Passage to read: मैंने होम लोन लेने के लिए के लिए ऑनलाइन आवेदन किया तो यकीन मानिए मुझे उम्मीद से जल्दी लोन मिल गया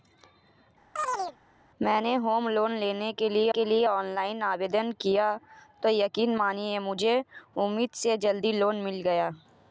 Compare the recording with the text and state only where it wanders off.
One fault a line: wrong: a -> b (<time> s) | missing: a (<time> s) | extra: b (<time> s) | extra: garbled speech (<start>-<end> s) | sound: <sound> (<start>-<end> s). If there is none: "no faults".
sound: chirp (1.0-1.4 s)